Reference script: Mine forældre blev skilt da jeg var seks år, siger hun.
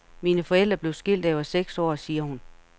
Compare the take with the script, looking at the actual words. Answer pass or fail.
pass